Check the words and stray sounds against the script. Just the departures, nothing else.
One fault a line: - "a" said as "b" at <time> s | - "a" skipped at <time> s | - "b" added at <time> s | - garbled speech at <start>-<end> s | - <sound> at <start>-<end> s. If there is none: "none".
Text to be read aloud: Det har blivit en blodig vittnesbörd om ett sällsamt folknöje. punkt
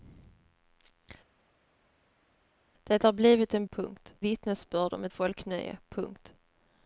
- "blodig" said as "punkt" at 3.7 s
- "sällsamt" skipped at 5.1 s